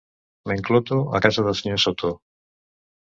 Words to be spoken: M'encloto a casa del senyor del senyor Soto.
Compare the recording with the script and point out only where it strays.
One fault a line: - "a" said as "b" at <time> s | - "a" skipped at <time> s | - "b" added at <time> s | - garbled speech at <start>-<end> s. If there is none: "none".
- "del senyor" skipped at 1.8 s